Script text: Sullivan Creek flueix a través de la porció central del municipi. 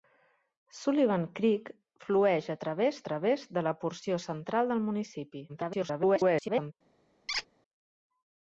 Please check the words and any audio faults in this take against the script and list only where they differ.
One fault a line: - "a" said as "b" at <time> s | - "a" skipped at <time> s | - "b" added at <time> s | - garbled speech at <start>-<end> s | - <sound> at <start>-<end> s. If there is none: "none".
- "través" added at 3.1 s
- garbled speech at 5.5-6.7 s
- squeak at 7.3-7.5 s